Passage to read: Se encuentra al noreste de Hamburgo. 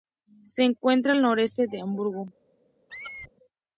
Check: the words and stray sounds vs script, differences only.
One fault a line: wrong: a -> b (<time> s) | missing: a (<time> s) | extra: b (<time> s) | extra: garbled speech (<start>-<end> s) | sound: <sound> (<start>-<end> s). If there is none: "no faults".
sound: squeak (2.9-3.3 s)